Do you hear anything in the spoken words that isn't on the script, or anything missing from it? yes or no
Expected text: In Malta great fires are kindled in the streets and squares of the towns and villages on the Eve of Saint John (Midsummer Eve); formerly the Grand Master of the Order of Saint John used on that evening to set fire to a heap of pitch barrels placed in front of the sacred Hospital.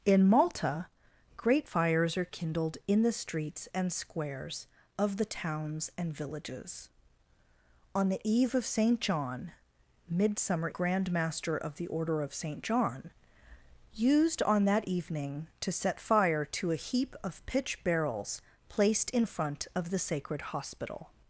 yes